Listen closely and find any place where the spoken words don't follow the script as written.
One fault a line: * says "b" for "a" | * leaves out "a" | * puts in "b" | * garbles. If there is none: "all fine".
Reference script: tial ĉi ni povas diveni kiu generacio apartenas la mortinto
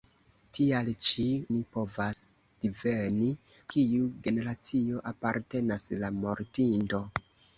all fine